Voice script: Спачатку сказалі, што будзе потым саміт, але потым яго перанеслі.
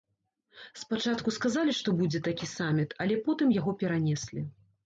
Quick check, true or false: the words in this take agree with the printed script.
false